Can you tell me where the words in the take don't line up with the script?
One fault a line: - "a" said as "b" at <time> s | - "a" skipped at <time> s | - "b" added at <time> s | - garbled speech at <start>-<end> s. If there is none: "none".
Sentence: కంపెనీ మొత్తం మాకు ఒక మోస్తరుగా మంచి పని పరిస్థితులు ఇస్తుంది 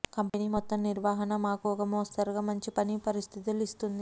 - "నిర్వహణ" added at 0.8 s